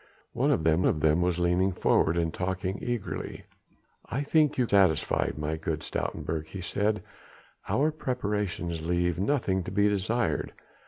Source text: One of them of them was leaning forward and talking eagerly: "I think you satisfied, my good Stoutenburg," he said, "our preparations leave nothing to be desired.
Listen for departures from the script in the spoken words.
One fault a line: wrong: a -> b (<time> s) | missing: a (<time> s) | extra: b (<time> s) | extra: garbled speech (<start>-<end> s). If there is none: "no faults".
no faults